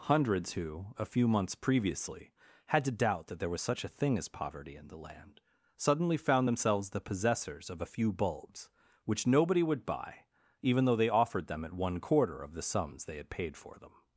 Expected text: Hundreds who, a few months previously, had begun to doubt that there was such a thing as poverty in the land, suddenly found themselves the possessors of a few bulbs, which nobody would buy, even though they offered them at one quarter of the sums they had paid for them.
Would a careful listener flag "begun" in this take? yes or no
yes